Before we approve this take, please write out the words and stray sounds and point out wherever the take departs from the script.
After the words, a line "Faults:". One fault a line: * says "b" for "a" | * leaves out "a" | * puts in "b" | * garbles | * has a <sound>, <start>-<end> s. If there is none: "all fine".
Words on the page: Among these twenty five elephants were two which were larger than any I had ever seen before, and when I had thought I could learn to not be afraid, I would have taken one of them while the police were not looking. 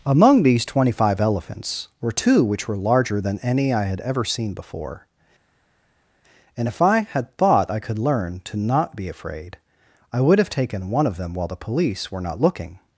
Among these twenty five elephants were two which were larger than any I had ever seen before, and if I had thought I could learn to not be afraid, I would have taken one of them while the police were not looking.
Faults:
* says "if" for "when"